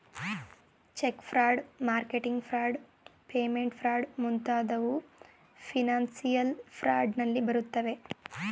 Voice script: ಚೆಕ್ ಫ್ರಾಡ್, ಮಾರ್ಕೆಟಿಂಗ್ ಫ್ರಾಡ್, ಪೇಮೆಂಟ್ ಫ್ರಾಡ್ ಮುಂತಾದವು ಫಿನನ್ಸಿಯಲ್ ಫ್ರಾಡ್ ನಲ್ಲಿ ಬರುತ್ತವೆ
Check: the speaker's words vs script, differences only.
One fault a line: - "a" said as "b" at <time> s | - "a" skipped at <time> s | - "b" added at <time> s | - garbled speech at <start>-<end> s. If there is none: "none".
none